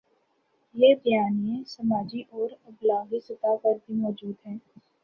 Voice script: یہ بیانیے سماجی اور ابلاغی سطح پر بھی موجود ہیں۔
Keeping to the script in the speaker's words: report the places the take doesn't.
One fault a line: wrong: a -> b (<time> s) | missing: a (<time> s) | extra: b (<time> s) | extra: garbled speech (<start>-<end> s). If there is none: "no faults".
no faults